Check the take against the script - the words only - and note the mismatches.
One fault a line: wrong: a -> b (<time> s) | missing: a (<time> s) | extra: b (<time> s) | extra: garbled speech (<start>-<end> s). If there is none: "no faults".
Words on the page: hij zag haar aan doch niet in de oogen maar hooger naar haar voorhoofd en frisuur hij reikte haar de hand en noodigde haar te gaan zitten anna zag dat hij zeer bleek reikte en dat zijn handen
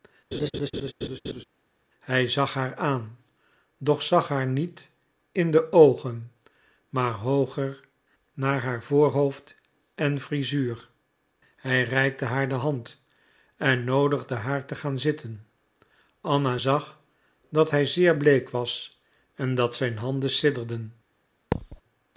extra: zag haar (4.0 s)
wrong: reikte -> was (18.5 s)